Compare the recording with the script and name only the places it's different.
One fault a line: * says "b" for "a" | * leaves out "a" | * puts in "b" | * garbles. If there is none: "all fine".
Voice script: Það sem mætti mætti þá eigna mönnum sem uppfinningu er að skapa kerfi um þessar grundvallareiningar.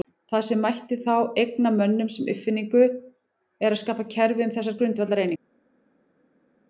* leaves out "mætti"